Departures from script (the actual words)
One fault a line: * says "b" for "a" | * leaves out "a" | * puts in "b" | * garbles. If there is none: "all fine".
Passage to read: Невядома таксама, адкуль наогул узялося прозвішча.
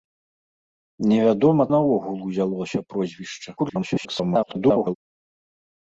* leaves out "таксама адкуль"
* garbles